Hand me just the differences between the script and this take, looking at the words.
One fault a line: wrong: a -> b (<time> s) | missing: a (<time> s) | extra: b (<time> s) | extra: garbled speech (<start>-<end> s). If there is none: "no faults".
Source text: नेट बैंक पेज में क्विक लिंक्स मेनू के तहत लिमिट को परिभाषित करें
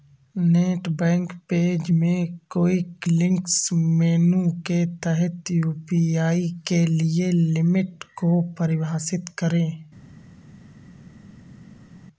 extra: यू.पी.आई के लिए (5.5 s)